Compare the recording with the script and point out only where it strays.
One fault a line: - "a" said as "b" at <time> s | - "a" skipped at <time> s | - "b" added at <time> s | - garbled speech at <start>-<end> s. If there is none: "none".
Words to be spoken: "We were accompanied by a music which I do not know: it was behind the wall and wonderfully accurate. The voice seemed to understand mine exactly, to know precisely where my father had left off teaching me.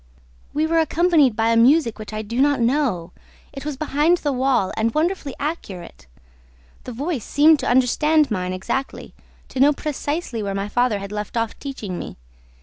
none